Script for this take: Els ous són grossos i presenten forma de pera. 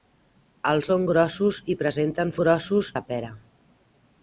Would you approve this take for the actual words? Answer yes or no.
no